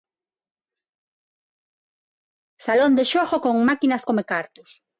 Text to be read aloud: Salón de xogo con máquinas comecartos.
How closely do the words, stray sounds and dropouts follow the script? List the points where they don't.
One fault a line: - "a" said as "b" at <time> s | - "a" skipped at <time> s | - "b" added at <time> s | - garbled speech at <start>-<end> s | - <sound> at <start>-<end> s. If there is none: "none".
none